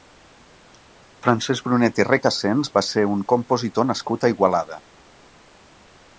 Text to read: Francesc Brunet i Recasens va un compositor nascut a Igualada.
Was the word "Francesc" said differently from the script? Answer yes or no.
no